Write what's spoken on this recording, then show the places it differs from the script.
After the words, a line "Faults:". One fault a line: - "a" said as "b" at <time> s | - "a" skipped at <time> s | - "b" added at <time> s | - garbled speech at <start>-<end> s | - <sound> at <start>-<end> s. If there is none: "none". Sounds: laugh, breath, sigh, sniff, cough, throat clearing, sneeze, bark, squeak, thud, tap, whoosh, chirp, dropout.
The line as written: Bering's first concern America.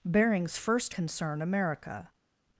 Bering's first concern America.
Faults:
none